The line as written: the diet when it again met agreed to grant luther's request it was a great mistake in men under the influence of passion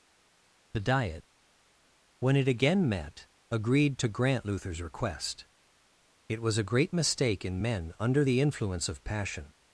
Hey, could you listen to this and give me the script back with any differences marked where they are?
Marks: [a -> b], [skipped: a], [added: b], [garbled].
the diet when it again met agreed to grant luther's request it was a great mistake in men under the influence of passion